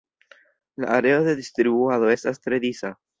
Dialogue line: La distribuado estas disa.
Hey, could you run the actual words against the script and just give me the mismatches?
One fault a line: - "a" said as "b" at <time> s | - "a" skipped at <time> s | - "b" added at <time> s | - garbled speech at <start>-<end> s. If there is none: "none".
- "areo de" added at 0.8 s
- "tre" added at 2.4 s